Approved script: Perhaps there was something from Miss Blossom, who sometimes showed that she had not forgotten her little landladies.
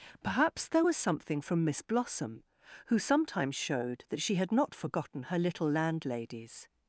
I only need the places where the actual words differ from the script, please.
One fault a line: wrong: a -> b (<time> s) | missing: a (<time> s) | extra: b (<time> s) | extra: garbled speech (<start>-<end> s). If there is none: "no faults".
no faults